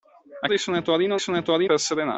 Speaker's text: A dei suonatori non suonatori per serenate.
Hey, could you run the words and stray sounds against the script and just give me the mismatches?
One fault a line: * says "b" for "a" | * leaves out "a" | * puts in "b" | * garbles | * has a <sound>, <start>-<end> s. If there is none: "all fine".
all fine